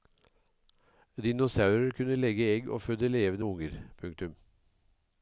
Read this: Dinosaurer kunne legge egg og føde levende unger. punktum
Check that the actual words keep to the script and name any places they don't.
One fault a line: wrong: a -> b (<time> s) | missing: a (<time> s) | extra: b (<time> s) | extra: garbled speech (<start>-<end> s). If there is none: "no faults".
no faults